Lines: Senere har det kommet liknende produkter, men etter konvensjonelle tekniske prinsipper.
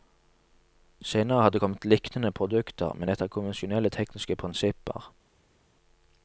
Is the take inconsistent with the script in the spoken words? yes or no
no